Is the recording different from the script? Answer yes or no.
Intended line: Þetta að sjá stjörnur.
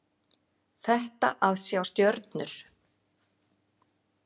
no